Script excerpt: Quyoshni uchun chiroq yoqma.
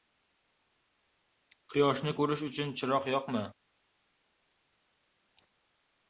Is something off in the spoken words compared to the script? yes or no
yes